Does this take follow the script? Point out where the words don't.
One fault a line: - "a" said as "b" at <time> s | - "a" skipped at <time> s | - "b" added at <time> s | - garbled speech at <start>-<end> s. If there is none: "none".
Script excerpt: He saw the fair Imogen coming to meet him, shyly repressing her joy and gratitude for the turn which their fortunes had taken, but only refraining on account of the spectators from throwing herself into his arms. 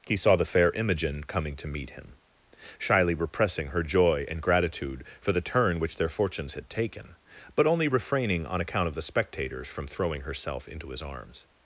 none